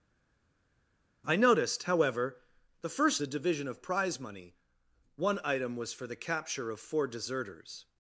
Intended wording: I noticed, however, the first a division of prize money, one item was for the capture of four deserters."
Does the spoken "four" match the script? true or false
true